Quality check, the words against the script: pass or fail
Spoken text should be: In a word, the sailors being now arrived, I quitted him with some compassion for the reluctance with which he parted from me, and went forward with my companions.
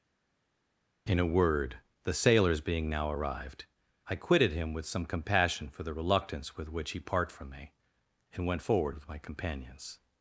fail